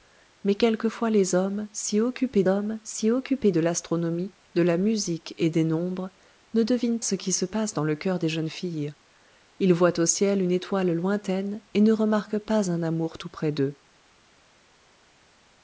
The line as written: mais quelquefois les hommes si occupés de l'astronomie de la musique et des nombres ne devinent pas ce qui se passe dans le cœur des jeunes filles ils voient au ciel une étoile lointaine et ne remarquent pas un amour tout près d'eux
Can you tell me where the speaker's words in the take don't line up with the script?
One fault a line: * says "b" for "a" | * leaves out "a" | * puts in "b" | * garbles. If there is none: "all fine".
* puts in "hommes si occupés"
* leaves out "pas"